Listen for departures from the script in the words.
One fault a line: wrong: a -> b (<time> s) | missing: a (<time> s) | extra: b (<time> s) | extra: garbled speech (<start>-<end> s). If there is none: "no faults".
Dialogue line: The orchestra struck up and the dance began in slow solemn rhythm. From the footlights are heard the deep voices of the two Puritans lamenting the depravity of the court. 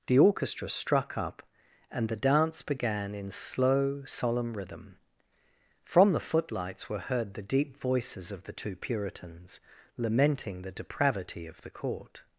wrong: are -> were (6.9 s)